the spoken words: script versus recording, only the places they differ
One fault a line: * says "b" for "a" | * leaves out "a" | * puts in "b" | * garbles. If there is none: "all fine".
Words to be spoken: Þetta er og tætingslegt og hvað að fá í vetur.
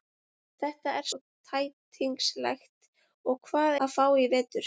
all fine